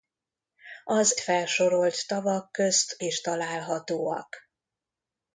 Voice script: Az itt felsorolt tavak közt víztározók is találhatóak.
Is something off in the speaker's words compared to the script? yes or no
yes